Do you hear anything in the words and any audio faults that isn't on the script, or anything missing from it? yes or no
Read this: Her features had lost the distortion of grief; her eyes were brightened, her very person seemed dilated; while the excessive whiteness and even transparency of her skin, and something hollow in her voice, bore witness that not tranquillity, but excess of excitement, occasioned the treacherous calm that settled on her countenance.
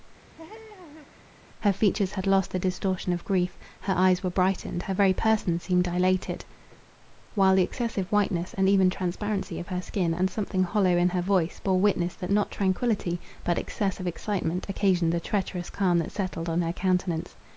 yes